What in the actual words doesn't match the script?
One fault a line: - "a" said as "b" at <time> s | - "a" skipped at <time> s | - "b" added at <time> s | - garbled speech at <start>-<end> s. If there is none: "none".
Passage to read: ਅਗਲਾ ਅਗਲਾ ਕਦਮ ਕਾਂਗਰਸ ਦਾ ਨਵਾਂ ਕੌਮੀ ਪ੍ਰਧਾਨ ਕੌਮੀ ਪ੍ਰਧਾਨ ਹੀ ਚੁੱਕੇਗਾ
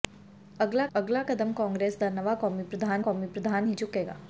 none